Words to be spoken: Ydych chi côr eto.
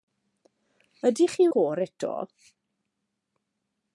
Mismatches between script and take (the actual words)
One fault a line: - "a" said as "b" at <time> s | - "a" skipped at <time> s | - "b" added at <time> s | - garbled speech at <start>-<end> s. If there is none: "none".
none